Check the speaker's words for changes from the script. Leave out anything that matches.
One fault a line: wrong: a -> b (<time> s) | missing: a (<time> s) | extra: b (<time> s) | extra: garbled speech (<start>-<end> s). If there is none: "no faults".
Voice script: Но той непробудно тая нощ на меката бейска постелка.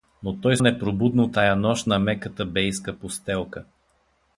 no faults